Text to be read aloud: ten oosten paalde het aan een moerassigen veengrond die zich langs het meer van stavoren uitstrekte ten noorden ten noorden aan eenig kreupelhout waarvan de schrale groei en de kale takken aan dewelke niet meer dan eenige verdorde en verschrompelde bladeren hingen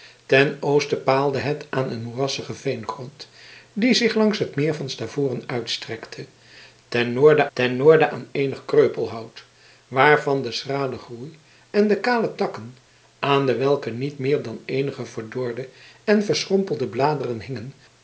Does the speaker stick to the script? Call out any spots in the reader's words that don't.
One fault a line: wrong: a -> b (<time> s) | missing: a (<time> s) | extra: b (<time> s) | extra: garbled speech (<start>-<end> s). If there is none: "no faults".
no faults